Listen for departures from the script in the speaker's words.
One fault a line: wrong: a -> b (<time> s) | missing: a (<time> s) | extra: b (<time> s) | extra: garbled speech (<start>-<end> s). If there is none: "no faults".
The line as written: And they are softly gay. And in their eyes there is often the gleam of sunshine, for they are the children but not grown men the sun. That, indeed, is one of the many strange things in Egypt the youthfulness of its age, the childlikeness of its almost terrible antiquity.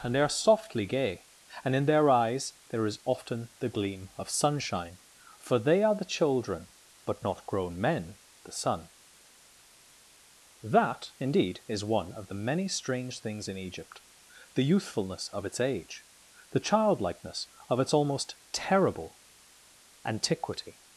no faults